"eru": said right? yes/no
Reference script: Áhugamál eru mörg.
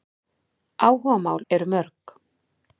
yes